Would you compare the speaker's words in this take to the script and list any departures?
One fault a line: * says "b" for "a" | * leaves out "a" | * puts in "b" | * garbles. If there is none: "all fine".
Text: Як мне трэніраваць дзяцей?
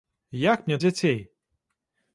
* leaves out "трэніраваць"